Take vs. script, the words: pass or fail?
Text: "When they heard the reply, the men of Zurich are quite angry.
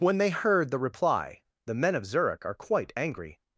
pass